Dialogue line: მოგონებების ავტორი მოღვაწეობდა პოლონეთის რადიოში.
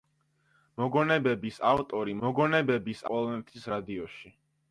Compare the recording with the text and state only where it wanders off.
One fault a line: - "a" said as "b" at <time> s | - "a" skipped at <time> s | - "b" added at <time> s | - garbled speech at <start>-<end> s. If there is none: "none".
- "მოღვაწეობდა" said as "მოგონებების" at 2.2 s